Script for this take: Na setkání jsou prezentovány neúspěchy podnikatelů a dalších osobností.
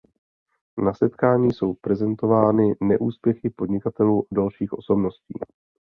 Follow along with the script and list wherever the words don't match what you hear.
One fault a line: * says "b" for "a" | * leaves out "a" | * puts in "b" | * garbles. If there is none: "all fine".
all fine